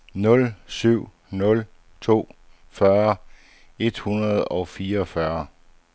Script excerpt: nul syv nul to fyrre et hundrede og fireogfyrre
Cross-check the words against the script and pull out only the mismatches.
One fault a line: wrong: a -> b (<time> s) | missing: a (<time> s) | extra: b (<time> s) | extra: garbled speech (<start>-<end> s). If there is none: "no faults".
no faults